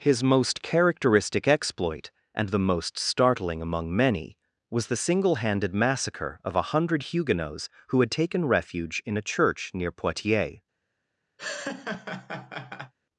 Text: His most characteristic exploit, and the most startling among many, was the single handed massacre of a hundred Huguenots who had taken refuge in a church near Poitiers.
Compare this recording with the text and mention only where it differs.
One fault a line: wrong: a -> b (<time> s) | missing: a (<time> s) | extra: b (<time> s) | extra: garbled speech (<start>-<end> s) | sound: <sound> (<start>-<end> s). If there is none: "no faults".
sound: laugh (11.4-12.9 s)